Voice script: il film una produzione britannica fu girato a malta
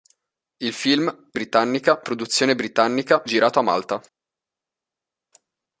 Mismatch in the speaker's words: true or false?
true